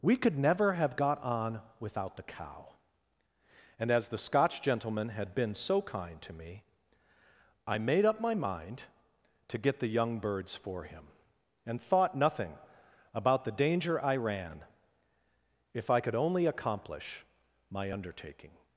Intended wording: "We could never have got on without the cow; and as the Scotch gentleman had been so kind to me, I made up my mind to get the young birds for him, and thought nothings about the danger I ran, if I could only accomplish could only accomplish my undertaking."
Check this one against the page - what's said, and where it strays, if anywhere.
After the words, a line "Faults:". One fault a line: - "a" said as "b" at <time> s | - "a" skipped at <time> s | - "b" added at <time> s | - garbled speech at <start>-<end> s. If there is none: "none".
"We could never have got on without the cow; and as the Scotch gentleman had been so kind to me, I made up my mind to get the young birds for him, and thought nothing about the danger I ran, if I could only accomplish my undertaking."
Faults:
- "nothings" said as "nothing" at 12.2 s
- "could only accomplish" skipped at 17.2 s